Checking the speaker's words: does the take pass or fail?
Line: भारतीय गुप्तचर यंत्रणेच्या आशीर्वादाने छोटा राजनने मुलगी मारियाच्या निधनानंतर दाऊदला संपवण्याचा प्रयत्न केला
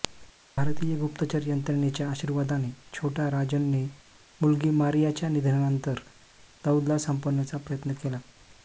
pass